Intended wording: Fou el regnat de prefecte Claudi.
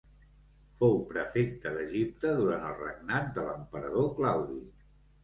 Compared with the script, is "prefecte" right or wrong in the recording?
wrong